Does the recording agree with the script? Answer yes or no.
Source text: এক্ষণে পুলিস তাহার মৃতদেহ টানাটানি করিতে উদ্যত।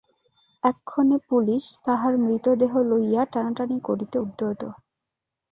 no